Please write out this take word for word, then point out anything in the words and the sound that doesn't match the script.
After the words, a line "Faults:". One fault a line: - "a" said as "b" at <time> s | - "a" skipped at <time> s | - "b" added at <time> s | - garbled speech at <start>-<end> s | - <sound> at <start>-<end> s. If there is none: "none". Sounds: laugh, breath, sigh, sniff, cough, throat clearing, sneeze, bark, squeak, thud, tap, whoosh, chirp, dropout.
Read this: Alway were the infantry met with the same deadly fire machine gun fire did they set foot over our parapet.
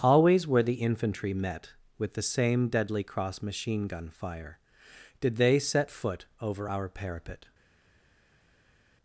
Always were the infantry met with the same deadly cross machine gun fire did they set foot over our parapet.
Faults:
- "Alway" said as "Always" at 0.0 s
- "fire" said as "cross" at 3.0 s